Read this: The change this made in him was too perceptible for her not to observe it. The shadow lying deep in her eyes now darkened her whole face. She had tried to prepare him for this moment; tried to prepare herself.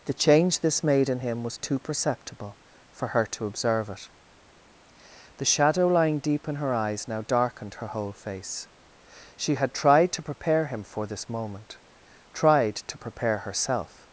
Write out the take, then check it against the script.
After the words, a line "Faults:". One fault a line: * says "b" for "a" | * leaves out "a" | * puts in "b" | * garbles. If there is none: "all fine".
The change this made in him was too perceptible for her to observe it. The shadow lying deep in her eyes now darkened her whole face. She had tried to prepare him for this moment; tried to prepare herself.
Faults:
* leaves out "not"